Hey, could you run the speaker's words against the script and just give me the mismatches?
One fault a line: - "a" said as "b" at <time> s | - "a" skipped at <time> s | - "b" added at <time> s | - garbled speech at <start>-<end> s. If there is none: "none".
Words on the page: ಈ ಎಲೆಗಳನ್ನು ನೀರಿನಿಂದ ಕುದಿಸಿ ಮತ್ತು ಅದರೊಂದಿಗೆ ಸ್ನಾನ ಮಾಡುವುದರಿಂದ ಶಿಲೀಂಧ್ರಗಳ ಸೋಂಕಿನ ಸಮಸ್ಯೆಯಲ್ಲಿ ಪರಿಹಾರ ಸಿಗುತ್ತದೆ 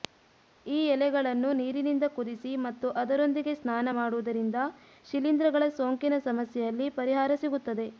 none